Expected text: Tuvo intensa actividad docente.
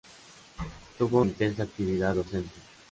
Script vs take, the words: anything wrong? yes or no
no